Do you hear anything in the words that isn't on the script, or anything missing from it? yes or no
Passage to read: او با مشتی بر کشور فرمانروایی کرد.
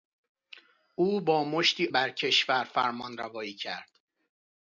no